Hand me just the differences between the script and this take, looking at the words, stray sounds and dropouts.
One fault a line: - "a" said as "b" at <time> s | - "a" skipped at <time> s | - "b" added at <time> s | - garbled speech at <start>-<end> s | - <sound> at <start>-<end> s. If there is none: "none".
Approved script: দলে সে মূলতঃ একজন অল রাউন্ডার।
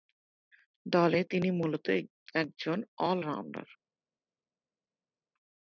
- "সে" said as "তিনি" at 1.2 s